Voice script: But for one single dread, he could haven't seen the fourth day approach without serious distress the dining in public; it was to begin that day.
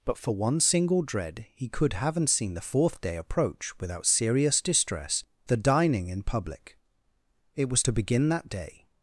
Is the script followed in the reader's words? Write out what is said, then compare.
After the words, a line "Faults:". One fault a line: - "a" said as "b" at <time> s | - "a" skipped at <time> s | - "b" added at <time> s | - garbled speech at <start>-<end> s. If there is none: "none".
But for one single dread, he could haven't seen the fourth day approach without serious distress the dining in public; it was to begin that day.
Faults:
none